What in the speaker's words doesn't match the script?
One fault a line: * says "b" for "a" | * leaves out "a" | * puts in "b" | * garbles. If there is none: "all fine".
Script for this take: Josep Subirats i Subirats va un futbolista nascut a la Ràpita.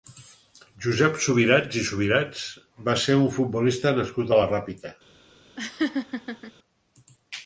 * puts in "ser"